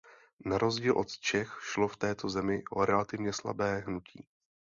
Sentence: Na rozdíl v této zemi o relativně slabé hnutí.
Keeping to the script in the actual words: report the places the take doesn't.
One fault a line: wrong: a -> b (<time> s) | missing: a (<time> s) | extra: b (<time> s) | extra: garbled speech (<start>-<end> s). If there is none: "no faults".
extra: od Čech šlo (1.0 s)